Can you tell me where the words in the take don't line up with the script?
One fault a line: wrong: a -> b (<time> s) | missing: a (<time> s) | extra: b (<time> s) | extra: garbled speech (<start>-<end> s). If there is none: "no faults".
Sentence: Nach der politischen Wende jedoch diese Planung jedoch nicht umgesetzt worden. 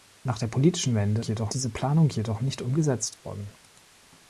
no faults